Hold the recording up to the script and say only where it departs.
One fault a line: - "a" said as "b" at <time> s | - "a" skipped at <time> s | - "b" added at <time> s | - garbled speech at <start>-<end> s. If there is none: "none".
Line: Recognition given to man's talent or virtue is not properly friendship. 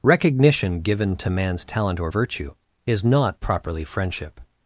none